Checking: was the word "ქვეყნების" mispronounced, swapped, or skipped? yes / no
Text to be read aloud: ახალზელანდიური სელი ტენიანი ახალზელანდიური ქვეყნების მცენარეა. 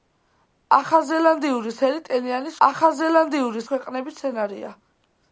no